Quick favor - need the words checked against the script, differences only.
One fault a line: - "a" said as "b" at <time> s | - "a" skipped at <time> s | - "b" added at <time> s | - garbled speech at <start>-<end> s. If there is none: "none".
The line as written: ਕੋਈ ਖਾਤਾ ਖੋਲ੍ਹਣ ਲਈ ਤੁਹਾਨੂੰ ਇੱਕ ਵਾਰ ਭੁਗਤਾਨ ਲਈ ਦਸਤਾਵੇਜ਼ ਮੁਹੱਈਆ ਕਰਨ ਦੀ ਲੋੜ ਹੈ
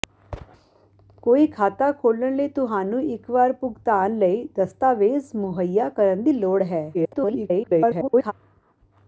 - garbled speech at 6.9-8.3 s